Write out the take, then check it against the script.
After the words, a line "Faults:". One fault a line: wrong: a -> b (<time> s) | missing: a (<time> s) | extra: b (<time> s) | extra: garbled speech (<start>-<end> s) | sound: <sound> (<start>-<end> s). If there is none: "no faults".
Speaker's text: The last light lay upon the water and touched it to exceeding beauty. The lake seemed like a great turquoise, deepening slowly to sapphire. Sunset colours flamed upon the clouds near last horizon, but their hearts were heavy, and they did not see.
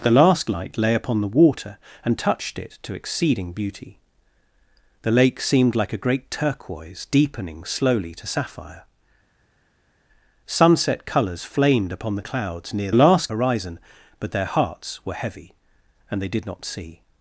The last light lay upon the water and touched it to exceeding beauty. The lake seemed like a great turquoise, deepening slowly to sapphire. Sunset colours flamed upon the clouds near last horizon, but their hearts were heavy, and they did not see.
Faults:
no faults